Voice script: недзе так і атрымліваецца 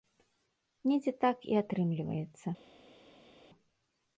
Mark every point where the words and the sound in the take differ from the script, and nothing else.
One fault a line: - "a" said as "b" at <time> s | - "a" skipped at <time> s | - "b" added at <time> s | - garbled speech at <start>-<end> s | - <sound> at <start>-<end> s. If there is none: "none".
none